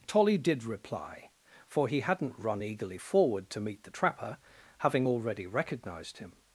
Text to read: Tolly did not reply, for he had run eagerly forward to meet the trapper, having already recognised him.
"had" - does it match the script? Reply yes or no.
no